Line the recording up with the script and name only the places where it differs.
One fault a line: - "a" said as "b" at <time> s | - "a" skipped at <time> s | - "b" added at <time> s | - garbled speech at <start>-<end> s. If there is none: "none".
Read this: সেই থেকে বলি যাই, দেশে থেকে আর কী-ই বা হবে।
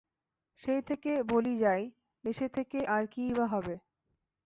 none